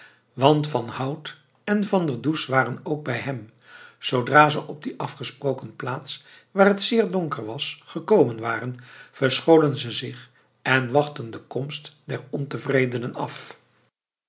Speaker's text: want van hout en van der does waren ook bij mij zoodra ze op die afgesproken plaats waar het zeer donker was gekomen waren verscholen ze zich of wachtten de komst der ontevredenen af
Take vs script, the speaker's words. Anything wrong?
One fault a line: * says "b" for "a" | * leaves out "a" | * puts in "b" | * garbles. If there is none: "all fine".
* says "hem" for "mij"
* says "en" for "of"